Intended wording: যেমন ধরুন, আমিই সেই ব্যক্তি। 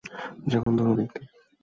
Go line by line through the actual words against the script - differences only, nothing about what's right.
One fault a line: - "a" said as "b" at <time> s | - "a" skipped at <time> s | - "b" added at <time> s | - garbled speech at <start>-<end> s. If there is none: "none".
- "আমিই সেই" skipped at 1.0 s